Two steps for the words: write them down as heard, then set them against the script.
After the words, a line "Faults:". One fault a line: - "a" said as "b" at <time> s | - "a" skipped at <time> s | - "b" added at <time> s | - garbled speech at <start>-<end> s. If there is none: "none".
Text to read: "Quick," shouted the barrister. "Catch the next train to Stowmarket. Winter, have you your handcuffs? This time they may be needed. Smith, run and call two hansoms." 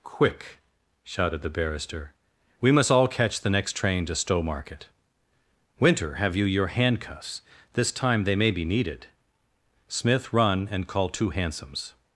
"Quick," shouted the barrister. "We must all catch the next train to Stowmarket. Winter, have you your handcuffs? This time they may be needed. Smith, run and call two hansoms."
Faults:
- "We must all" added at 2.6 s